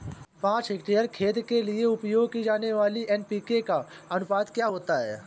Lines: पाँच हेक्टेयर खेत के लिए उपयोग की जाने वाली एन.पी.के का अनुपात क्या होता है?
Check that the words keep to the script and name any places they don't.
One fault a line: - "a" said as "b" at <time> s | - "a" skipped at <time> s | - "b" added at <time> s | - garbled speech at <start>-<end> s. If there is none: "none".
none